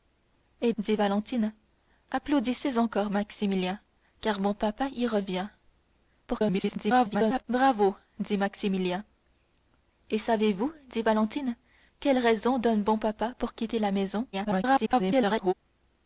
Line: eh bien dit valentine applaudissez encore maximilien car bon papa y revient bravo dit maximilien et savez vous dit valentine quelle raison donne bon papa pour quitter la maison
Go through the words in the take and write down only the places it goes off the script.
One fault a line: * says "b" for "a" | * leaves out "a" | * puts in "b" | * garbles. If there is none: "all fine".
* leaves out "bien"
* garbles
* garbles